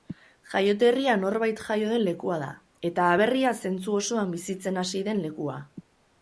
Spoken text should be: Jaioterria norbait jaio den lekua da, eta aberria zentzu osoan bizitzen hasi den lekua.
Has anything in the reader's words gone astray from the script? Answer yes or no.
no